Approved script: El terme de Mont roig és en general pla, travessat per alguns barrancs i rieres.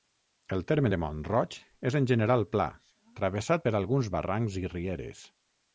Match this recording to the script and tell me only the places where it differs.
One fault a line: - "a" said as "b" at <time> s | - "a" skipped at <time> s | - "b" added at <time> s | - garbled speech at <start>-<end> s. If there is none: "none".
none